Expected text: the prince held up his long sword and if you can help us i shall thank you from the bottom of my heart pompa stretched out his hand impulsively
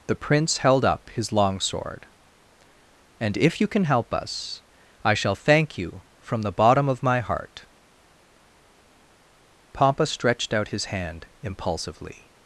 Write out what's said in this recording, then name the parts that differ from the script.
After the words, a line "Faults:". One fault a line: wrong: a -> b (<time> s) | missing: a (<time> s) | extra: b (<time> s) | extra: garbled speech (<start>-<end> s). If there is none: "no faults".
the prince held up his long sword and if you can help us i shall thank you from the bottom of my heart pompa stretched out his hand impulsively
Faults:
no faults